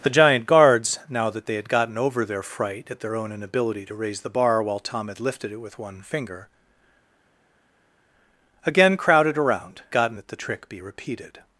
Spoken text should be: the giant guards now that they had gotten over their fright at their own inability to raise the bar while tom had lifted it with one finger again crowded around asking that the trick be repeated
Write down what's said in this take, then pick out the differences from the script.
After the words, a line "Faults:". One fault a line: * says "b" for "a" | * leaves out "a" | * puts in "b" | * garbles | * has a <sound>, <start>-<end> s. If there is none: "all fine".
the giant guards now that they had gotten over their fright at their own inability to raise the bar while tom had lifted it with one finger again crowded around gotten that the trick be repeated
Faults:
* says "gotten" for "asking"